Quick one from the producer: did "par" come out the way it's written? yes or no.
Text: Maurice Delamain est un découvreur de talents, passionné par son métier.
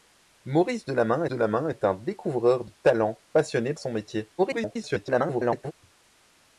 no